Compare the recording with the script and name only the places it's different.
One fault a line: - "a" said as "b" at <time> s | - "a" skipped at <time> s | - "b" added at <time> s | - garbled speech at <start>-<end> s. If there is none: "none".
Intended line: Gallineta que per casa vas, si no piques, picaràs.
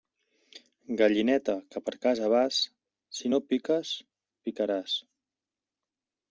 none